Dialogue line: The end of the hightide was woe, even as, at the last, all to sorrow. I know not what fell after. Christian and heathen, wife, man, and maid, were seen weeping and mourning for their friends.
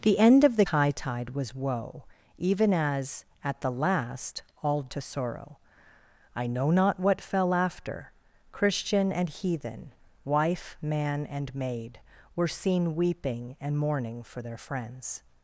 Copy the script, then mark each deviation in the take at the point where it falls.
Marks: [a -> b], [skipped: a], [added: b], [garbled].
The end of the hightide was woe, even as, at the last, all to sorrow. I know not what fell after. Christian and heathen, wife, man, and maid, were seen weeping and mourning for their friends.